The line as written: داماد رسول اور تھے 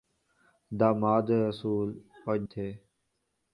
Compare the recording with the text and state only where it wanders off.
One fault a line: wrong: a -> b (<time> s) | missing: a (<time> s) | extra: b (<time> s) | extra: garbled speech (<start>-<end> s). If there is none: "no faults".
no faults